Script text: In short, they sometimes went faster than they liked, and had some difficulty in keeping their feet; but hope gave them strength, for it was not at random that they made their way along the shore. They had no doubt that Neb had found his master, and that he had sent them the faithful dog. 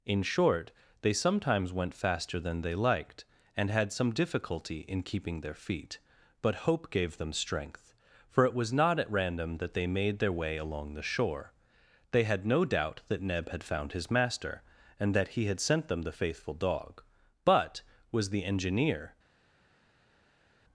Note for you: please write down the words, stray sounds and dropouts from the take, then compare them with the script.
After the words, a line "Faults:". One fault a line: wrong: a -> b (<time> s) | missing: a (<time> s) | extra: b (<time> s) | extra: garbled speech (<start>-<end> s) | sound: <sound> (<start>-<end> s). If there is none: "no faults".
In short, they sometimes went faster than they liked, and had some difficulty in keeping their feet; but hope gave them strength, for it was not at random that they made their way along the shore. They had no doubt that Neb had found his master, and that he had sent them the faithful dog. But was the engineer
Faults:
extra: But was the engineer (17.4 s)